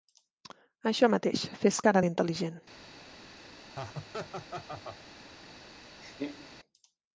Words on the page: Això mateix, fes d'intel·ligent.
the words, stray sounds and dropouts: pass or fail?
fail